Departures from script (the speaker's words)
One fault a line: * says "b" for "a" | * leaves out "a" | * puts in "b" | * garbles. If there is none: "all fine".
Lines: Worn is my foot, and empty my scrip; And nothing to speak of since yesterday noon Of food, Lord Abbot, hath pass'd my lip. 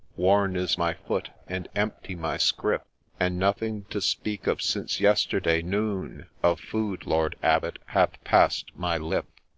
all fine